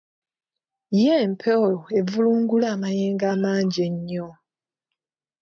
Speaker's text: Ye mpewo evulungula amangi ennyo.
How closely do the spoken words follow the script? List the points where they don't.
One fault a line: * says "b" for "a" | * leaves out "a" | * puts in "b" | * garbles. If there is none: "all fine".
* puts in "amayengo"